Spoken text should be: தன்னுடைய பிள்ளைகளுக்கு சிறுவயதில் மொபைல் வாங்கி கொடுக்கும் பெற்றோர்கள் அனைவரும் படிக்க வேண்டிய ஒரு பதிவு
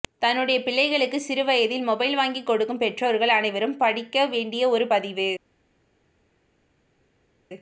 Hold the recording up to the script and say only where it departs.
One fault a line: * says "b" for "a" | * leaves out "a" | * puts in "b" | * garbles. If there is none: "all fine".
all fine